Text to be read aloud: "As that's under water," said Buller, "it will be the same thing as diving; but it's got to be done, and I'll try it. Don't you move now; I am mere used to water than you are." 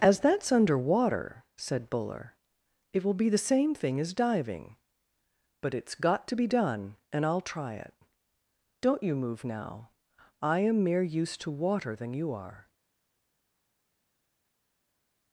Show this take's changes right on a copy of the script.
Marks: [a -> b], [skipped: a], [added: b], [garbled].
"As that's under water," said Buller, "it will be the same thing as diving; but it's got to be done, and I'll try it. Don't you move now; I am mere used to water than you are."